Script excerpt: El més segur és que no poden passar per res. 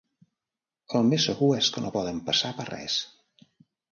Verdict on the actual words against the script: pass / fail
pass